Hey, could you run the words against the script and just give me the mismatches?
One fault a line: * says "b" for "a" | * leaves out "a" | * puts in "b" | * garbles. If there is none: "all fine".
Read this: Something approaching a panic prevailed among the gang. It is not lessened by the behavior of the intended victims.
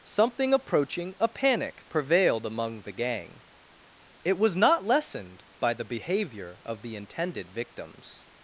* says "was" for "is"